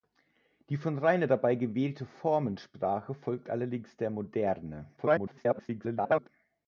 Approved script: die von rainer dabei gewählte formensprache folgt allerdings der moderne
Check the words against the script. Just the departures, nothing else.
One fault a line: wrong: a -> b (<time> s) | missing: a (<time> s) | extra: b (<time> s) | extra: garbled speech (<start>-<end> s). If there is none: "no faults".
extra: garbled speech (5.0-6.3 s)